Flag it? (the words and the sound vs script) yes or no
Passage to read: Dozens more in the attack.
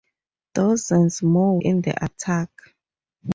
no